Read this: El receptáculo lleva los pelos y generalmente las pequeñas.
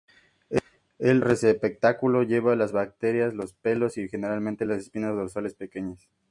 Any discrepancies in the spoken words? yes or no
yes